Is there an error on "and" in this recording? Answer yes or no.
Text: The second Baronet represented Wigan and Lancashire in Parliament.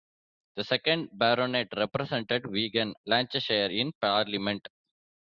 yes